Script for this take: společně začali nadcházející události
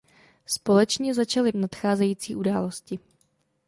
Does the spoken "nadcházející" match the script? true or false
true